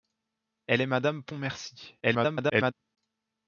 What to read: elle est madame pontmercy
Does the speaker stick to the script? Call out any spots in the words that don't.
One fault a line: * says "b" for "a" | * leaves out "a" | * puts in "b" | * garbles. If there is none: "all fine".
* garbles